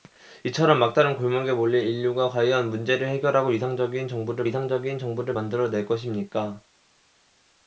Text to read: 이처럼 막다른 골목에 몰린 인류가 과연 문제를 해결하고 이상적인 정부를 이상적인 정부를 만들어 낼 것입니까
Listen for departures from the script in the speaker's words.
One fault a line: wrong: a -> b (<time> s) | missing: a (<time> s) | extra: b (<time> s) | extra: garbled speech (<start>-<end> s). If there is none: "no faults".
no faults